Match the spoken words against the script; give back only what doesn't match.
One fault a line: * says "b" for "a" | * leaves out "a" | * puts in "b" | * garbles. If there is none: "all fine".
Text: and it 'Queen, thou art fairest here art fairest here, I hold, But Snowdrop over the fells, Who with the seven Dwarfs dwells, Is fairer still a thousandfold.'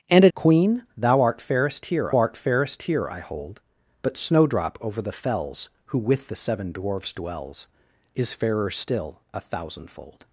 all fine